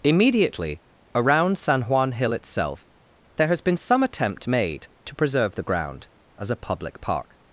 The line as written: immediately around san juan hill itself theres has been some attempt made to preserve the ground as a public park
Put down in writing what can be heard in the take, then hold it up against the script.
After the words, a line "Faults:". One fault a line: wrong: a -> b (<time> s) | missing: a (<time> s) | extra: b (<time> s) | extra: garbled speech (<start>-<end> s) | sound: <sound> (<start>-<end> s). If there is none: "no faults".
immediately around san juan hill itself there has been some attempt made to preserve the ground as a public park
Faults:
wrong: theres -> there (3.4 s)